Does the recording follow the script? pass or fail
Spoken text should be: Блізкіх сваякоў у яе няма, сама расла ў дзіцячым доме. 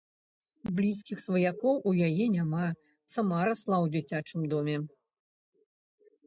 pass